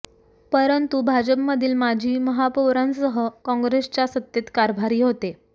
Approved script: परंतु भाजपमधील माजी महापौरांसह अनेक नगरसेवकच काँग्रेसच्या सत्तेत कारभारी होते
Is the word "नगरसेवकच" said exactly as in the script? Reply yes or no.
no